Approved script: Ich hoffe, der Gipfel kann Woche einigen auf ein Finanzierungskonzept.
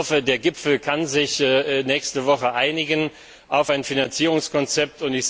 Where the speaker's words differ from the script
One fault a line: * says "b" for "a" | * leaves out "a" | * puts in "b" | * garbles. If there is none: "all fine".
* puts in "sich nächste"